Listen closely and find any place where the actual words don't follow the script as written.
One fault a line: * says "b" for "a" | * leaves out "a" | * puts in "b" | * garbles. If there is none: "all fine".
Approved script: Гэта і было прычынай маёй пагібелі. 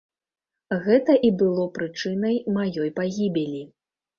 all fine